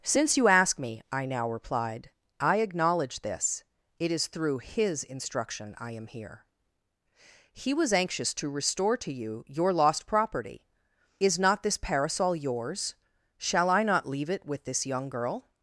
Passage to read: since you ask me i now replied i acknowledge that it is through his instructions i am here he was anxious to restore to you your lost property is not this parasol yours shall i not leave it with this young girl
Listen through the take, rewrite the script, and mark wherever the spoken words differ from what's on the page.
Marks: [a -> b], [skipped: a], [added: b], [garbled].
since you ask me i now replied i acknowledge [that -> this] it is through his [instructions -> instruction] i am here he was anxious to restore to you your lost property is not this parasol yours shall i not leave it with this young girl